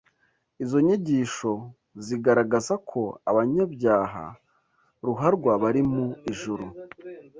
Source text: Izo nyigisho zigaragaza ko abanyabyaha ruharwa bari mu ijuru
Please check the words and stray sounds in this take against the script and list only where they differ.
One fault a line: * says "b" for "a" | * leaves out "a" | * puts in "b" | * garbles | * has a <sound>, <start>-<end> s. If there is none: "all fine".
all fine